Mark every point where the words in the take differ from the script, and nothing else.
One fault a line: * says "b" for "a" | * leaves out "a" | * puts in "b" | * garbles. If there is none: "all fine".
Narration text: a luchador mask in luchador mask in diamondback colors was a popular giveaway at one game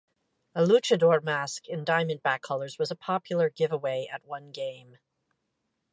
* leaves out "luchador mask in"